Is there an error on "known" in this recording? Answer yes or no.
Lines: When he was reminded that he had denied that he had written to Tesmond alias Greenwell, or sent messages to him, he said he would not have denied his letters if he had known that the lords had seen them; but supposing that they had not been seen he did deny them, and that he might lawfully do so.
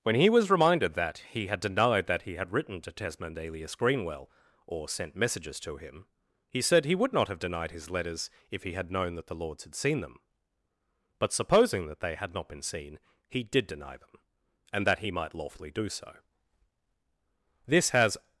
no